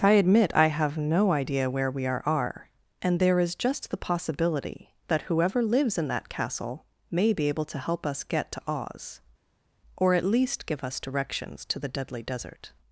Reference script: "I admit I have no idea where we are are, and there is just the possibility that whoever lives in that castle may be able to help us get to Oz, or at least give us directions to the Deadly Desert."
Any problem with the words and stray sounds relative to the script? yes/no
no